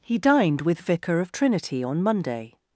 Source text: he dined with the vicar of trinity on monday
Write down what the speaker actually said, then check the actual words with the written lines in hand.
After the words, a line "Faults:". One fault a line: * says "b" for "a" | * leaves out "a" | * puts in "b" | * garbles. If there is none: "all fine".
he dined with vicar of trinity on monday
Faults:
* leaves out "the"